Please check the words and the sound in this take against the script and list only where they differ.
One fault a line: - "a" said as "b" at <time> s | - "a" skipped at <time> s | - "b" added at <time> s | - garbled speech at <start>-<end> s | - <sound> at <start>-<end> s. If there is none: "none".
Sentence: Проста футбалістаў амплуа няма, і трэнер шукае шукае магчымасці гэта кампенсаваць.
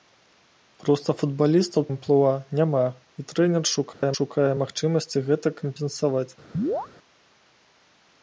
- dropout at 3.9-4.0 s
- chirp at 6.5-6.9 s